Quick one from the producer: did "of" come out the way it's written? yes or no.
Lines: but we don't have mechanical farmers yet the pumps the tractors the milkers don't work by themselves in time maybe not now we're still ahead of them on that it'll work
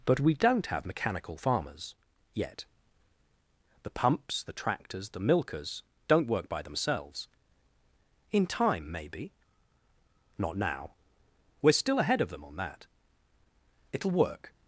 yes